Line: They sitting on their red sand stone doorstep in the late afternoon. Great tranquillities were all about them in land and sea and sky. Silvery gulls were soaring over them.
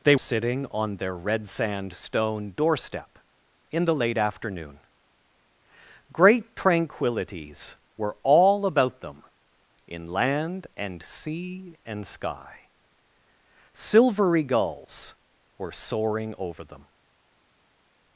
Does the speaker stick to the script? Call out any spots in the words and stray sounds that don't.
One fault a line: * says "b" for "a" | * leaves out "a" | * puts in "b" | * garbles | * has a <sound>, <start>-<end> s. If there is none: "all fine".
all fine